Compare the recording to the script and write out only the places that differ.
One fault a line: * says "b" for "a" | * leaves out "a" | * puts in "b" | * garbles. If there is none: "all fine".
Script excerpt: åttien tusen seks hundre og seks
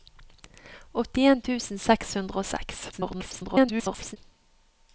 * garbles